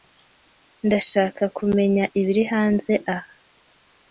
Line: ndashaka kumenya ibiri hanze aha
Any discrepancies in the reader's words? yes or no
no